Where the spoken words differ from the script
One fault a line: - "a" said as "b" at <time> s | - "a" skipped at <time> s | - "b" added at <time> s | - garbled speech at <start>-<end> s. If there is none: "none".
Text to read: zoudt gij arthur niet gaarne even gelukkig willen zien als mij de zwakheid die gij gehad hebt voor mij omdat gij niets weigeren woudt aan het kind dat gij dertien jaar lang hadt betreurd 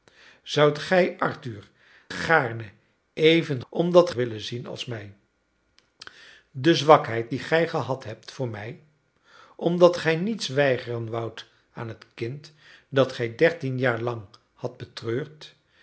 - "niet" skipped at 1.7 s
- "gelukkig" said as "omdat" at 3.7 s